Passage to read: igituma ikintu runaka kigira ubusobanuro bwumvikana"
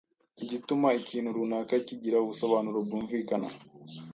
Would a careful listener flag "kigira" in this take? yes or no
no